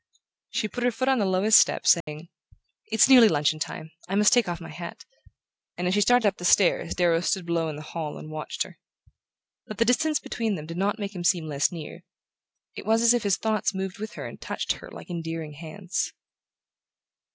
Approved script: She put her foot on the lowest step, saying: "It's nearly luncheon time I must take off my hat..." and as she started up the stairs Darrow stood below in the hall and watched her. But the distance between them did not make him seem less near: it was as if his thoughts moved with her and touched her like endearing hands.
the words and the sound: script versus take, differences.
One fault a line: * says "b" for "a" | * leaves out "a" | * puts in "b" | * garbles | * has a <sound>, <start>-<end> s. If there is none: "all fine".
* has a dropout, 2.0-2.1 s